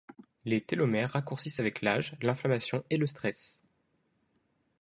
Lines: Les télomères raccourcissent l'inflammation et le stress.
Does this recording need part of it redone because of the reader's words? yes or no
yes